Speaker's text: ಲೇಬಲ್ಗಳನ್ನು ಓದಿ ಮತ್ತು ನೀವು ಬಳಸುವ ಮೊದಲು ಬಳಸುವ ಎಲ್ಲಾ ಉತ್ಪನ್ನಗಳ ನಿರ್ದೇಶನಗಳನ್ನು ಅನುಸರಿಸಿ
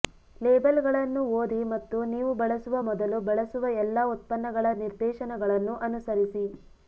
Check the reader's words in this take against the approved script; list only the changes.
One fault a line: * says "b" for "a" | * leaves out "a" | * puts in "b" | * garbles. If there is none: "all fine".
all fine